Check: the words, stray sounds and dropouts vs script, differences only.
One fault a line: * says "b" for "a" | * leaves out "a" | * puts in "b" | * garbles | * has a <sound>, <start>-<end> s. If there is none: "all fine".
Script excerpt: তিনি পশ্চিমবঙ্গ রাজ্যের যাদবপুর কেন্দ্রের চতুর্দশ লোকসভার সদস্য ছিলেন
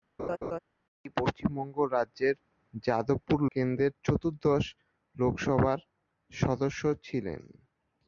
* has a laugh, 0.2-0.6 s